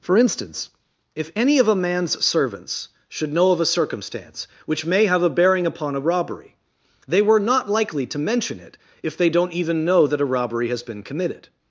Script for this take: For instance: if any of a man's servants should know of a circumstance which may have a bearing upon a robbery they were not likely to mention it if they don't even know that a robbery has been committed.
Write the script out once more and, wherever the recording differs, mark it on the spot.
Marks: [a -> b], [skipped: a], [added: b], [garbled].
For instance: if any of a man's servants should know of a circumstance which may have a bearing upon a robbery they were not likely to mention it if they don't even know that a robbery has been committed.